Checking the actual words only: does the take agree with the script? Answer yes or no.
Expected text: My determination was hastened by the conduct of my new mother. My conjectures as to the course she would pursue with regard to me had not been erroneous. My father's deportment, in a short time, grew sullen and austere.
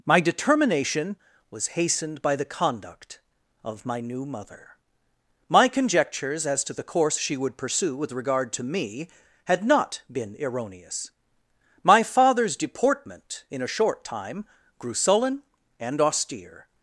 yes